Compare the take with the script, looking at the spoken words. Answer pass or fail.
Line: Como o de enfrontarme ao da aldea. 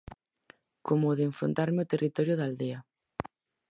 fail